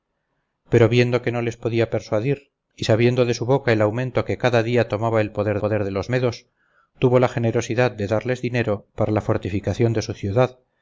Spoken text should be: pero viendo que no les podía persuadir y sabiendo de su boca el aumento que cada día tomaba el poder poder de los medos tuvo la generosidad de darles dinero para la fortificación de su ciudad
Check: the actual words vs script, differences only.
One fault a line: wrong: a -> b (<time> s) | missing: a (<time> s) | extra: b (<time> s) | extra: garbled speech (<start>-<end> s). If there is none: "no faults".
no faults